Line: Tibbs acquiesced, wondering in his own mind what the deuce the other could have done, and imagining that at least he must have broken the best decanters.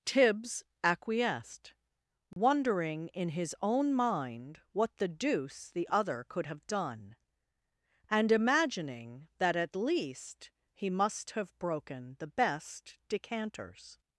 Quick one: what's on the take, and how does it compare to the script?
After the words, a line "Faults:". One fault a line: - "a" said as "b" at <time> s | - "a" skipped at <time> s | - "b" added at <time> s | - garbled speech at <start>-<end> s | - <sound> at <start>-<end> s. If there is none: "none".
Tibbs acquiesced, wondering in his own mind what the deuce the other could have done, and imagining that at least he must have broken the best decanters.
Faults:
- dropout at 2.3-2.4 s